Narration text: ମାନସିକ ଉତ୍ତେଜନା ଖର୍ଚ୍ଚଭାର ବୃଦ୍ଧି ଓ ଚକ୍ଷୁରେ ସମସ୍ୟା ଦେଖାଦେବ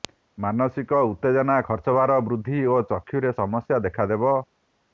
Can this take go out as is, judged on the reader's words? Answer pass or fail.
pass